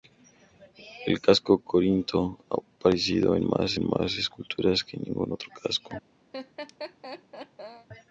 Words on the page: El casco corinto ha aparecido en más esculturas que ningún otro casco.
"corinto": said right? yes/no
yes